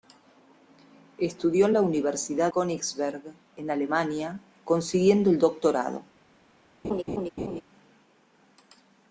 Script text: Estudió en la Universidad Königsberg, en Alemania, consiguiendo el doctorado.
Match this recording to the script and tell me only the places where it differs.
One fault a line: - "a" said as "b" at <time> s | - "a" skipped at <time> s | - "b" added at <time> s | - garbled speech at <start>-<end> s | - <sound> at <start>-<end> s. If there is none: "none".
- laugh at 6.8-7.6 s